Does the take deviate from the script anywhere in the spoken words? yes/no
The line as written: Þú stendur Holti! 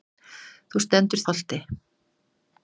no